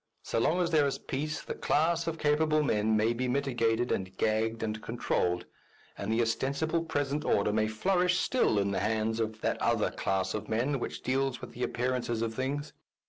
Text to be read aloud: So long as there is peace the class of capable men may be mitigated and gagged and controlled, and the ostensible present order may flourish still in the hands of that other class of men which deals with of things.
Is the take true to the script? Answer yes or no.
no